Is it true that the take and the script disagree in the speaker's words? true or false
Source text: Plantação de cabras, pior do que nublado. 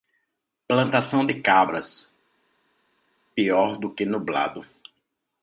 false